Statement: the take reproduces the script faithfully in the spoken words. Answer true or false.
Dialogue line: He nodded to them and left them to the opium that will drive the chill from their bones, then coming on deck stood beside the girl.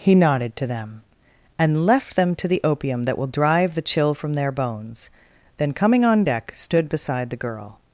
true